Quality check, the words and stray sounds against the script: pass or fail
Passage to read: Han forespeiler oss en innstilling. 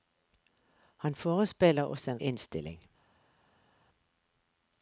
pass